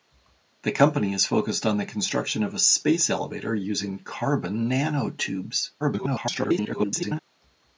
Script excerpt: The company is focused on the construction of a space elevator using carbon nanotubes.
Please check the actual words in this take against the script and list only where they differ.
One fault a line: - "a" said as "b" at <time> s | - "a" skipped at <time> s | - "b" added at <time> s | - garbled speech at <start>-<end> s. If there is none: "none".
- garbled speech at 5.8-7.2 s